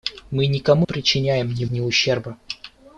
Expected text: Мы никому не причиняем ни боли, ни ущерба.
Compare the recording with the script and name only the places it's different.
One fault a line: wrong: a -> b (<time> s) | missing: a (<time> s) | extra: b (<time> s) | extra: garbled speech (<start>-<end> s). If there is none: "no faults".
missing: не (0.9 s)
missing: боли (1.6 s)